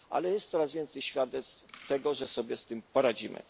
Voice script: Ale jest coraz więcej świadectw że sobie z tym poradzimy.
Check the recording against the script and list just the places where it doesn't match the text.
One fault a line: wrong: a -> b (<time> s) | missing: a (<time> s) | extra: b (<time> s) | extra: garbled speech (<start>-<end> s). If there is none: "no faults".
extra: tego (1.9 s)